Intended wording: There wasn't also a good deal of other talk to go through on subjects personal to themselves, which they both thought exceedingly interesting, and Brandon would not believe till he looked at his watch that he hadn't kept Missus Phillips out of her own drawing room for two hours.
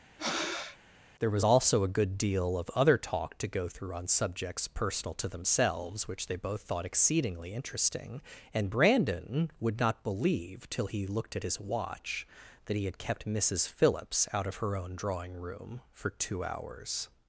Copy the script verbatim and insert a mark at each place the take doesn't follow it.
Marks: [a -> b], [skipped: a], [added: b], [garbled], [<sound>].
[breath] There [wasn't -> was] also a good deal of other talk to go through on subjects personal to themselves, which they both thought exceedingly interesting, and Brandon would not believe till he looked at his watch that he [hadn't -> had] kept Missus Phillips out of her own drawing room for two hours.